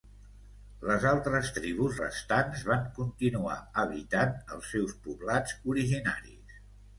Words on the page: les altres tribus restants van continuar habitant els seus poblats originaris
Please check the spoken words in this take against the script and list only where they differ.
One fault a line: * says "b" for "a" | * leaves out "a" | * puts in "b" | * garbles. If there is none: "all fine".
all fine